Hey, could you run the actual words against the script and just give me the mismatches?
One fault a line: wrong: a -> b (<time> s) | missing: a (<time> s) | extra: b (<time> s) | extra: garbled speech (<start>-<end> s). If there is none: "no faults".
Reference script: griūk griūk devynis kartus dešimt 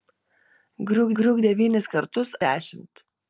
no faults